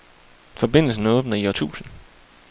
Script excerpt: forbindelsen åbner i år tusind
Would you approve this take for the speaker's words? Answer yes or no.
yes